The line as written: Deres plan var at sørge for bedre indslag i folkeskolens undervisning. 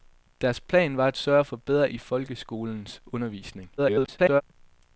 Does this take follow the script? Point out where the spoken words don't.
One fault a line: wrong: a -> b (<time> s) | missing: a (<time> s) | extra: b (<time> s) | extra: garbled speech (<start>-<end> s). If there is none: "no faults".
missing: indslag (1.9 s)
extra: garbled speech (3.8-4.4 s)